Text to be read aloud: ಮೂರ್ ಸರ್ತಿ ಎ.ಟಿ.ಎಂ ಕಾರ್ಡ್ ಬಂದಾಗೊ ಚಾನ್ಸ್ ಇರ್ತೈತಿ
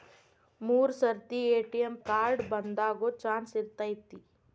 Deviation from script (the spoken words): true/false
false